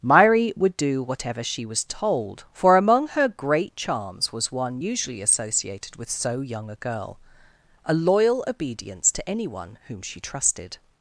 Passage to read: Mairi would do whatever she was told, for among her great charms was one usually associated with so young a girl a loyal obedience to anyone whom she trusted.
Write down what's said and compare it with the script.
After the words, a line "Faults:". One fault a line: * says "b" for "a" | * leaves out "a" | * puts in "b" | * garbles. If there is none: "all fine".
Mairi would do whatever she was told, for among her great charms was one usually associated with so young a girl a loyal obedience to anyone whom she trusted.
Faults:
all fine